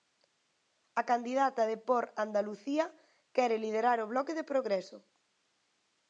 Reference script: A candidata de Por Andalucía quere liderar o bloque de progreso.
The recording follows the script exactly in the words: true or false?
true